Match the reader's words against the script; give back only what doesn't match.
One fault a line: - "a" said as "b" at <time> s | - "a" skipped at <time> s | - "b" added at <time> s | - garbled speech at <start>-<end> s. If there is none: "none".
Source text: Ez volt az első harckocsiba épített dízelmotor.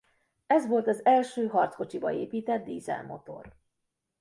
none